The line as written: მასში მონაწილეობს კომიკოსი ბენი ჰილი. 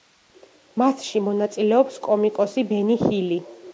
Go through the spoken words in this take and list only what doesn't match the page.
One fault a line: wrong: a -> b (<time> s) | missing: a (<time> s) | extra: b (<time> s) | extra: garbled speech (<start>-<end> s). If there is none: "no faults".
no faults